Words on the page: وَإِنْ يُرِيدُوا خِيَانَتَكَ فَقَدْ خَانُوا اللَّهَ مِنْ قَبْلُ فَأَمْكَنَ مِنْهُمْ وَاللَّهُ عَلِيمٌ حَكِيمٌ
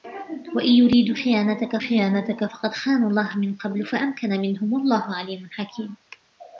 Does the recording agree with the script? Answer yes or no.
no